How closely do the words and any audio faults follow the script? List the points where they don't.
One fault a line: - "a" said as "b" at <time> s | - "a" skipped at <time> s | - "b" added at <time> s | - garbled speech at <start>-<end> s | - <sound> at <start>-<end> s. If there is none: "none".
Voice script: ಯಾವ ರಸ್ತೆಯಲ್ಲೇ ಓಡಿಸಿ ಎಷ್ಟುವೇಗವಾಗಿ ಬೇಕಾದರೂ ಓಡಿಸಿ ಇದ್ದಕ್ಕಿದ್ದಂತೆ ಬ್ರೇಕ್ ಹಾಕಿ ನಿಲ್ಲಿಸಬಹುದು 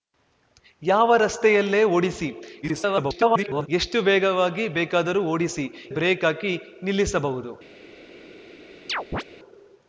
- garbled speech at 2.6-3.7 s
- "ಇದ್ದಕ್ಕಿದ್ದಂತೆ" skipped at 5.6 s
- chirp at 8.9-9.2 s